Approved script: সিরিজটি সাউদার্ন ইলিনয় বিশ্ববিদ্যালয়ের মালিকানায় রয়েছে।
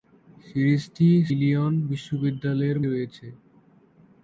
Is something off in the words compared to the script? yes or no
yes